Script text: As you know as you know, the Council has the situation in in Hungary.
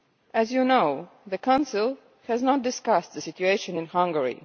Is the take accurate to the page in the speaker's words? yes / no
no